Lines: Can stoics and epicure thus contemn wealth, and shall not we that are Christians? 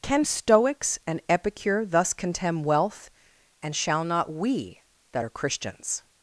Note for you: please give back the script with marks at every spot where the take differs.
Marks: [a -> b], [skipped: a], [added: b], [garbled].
Can stoics and epicure thus contemn wealth, and shall not we that are Christians?